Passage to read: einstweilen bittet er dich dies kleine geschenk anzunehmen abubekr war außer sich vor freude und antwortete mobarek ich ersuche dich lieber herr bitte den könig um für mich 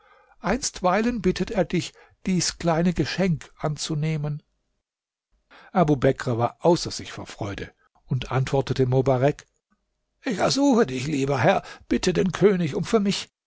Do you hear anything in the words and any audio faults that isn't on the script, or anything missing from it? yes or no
no